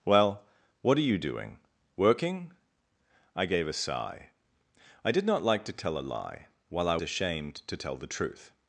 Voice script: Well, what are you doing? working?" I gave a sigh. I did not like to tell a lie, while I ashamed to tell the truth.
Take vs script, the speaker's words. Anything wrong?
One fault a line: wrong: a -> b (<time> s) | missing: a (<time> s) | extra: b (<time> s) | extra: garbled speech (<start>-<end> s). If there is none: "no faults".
no faults